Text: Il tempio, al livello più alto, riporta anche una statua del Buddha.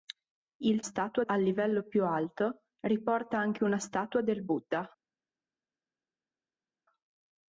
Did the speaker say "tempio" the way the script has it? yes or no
no